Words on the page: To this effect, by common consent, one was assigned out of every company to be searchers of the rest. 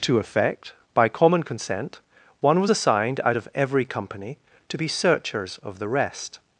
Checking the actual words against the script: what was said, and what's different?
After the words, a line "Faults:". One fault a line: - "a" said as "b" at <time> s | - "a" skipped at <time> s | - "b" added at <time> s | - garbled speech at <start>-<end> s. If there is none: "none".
To effect, by common consent, one was assigned out of every company to be searchers of the rest.
Faults:
- "this" skipped at 0.2 s